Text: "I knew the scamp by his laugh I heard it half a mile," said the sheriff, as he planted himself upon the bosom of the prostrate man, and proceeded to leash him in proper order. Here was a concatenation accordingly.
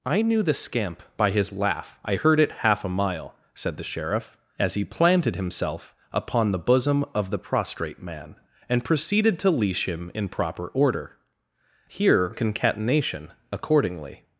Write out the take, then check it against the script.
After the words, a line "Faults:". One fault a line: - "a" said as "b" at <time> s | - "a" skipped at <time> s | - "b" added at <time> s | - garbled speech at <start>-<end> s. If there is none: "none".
"I knew the scamp by his laugh I heard it half a mile," said the sheriff, as he planted himself upon the bosom of the prostrate man, and proceeded to leash him in proper order. Here a concatenation accordingly.
Faults:
- "was" skipped at 12.3 s